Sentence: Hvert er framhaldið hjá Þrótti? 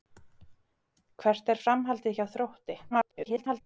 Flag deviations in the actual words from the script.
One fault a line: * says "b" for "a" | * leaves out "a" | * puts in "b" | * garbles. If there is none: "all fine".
* garbles